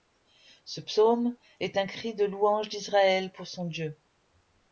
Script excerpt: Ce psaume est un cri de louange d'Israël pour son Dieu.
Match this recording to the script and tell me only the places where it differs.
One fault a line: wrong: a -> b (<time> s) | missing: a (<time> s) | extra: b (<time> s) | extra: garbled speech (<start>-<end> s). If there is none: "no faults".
no faults